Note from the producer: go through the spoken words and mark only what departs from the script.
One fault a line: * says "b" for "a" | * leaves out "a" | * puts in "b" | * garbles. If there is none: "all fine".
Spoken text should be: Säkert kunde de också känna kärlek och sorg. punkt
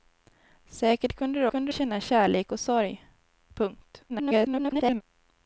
* says "kunde" for "också"
* garbles